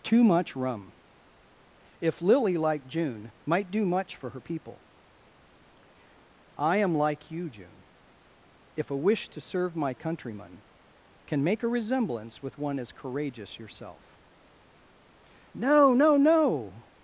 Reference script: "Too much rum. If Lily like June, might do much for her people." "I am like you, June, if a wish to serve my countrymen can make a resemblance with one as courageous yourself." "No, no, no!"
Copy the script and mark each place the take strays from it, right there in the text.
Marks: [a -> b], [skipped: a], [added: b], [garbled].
"Too much rum. If Lily like June, might do much for her people." "I am like you, June, if a wish to serve my countrymen can make a resemblance with one as courageous yourself." "No, no, no!"